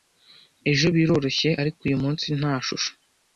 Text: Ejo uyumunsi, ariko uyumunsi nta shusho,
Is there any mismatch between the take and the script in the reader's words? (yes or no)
yes